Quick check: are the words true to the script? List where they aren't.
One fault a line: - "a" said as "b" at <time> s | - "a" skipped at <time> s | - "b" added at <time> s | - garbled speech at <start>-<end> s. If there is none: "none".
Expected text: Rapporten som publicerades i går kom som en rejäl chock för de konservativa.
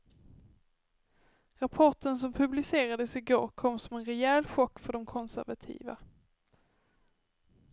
none